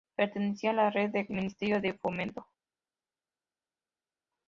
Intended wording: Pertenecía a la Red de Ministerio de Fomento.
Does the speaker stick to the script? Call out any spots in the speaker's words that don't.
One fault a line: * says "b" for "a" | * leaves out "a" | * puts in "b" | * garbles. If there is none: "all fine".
all fine